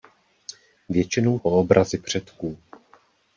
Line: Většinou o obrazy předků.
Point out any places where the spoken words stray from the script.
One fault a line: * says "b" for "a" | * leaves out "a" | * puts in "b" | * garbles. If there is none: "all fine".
all fine